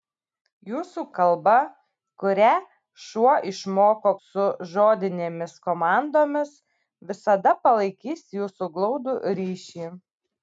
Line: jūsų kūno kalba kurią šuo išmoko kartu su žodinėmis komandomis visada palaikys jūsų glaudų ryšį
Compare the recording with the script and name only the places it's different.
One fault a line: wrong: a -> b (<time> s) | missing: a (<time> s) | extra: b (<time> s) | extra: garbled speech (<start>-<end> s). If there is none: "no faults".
missing: kūno (1.0 s)
missing: kartu (4.1 s)